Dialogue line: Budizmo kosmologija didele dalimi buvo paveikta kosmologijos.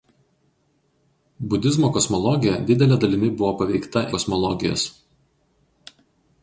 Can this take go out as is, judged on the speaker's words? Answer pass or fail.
pass